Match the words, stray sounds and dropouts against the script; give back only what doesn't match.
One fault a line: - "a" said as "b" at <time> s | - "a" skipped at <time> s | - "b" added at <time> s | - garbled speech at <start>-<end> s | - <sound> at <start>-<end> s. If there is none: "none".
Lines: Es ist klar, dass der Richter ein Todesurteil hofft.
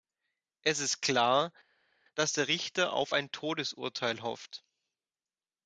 - "auf" added at 2.9 s